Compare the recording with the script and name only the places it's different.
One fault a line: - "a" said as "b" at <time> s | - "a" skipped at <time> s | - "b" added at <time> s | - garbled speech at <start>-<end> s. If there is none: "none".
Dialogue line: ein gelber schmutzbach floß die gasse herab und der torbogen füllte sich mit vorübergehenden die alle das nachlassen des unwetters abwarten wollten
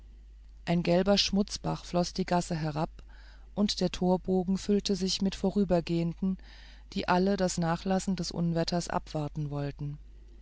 none